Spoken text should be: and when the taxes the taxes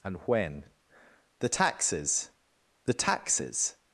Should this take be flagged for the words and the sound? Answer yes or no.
no